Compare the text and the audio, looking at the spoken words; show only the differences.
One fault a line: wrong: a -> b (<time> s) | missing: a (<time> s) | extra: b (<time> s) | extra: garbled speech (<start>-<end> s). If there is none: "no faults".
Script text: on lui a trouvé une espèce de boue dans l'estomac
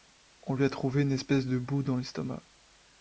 no faults